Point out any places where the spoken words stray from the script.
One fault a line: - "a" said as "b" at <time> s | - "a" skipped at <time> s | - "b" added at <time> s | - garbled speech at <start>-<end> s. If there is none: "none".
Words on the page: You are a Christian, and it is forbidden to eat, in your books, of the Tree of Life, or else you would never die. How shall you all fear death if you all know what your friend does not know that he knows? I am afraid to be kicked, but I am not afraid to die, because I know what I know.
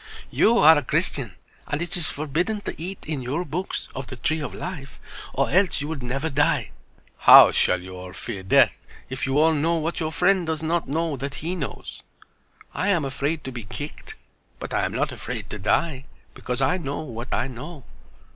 none